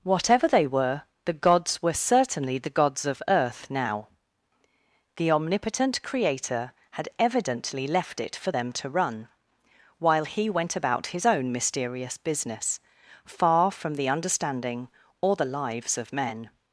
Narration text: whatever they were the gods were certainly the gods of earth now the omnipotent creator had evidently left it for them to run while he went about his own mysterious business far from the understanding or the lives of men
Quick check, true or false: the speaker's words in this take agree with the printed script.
true